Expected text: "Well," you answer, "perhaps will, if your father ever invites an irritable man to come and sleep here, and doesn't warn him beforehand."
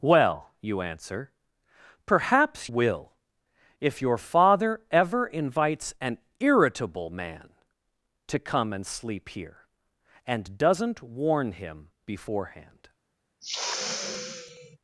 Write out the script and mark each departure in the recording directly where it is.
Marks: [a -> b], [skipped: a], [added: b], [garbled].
"Well," you answer, "perhaps will, if your father ever invites an irritable man to come and sleep here, and doesn't warn him beforehand."